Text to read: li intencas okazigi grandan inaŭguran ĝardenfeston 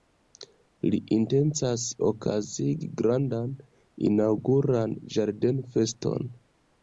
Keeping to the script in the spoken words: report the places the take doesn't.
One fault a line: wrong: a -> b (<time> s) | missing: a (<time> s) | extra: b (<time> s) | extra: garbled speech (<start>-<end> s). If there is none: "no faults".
no faults